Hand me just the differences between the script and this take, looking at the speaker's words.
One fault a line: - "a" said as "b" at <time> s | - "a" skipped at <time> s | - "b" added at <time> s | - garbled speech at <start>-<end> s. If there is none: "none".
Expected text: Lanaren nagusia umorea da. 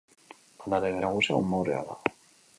none